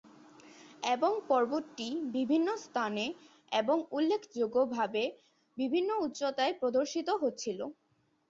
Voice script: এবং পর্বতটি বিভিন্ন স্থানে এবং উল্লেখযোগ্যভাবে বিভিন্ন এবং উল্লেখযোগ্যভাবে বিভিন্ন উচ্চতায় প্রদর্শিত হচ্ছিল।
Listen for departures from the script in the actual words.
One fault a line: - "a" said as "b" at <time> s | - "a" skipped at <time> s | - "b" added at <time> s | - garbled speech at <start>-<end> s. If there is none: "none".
- "এবং উল্লেখযোগ্যভাবে বিভিন্ন" skipped at 5.9 s